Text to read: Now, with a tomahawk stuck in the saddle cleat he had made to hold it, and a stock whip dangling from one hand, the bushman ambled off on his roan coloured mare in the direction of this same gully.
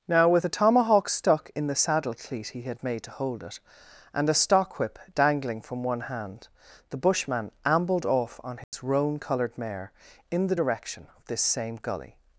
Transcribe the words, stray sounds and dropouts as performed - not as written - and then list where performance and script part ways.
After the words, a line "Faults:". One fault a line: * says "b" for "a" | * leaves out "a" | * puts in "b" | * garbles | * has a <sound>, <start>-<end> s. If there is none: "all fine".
Now, with a tomahawk stuck in the saddle cleat he had made to hold it, and a stock whip dangling from one hand, the bushman ambled off on his roan coloured mare in the direction of this same gully.
Faults:
* has a dropout, 8.6-8.7 s